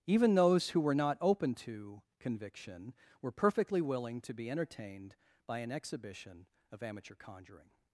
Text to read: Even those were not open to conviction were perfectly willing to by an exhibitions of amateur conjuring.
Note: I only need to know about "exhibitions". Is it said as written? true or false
false